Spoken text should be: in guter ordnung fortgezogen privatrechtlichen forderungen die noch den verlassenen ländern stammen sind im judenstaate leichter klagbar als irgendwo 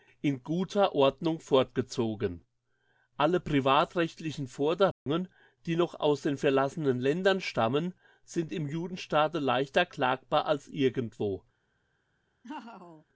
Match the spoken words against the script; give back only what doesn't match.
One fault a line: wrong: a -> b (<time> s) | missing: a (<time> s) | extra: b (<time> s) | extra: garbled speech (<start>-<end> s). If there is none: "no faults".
extra: alle (3.2 s)
extra: aus (6.0 s)